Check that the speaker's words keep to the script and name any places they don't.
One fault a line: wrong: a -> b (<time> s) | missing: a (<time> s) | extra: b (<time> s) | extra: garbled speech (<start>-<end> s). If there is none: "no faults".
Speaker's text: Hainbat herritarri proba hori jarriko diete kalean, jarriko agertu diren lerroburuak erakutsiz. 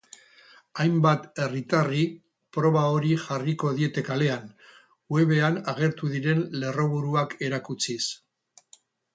wrong: jarriko -> webean (5.2 s)